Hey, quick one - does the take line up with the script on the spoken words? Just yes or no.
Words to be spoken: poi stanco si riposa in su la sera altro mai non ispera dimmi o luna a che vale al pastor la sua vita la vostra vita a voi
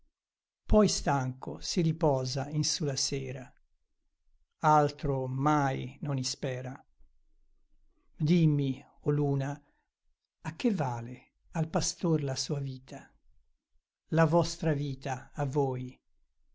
yes